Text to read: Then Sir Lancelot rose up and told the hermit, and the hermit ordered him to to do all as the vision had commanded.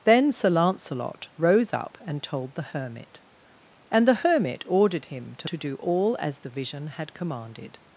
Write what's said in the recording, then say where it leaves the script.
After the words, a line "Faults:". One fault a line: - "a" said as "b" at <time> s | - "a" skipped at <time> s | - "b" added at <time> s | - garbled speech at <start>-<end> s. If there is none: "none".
Then Sir Lancelot rose up and told the hermit, and the hermit ordered him to to do all as the vision had commanded.
Faults:
none